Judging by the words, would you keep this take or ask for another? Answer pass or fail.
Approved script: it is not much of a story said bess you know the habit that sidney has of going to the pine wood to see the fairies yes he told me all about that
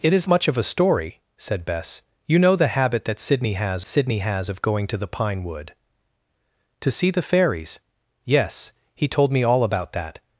fail